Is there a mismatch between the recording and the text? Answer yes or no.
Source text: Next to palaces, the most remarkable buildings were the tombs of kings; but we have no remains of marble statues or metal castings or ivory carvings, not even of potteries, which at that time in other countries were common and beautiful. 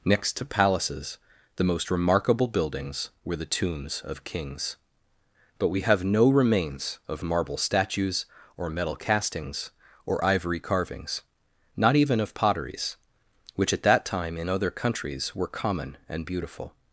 no